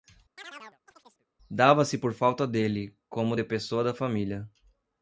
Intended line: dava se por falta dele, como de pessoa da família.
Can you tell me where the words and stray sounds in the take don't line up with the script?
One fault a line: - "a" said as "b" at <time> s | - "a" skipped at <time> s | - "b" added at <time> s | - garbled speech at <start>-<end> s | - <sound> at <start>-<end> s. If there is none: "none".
- chirp at 0.4-1.3 s